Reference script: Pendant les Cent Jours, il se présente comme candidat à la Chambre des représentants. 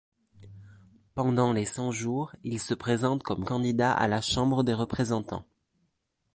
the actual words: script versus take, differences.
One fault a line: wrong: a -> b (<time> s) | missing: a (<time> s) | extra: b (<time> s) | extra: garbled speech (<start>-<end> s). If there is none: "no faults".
no faults